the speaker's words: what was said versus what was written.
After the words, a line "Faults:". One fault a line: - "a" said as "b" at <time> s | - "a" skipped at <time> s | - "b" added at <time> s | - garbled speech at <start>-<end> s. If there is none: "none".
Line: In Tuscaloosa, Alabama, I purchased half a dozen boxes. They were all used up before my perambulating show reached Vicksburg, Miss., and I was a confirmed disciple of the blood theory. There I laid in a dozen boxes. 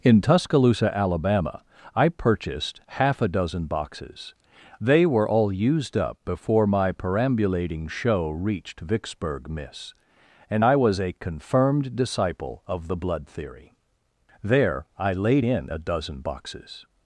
In Tuscaloosa, Alabama, I purchased half a dozen boxes. They were all used up before my perambulating show reached Vicksburg, Miss., and I was a confirmed disciple of the blood theory. There I laid in a dozen boxes.
Faults:
none